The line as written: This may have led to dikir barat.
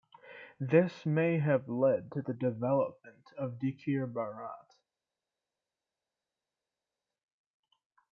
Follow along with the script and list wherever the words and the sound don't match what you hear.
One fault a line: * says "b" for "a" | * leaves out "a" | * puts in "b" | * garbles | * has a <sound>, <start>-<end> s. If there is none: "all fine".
* puts in "the development of"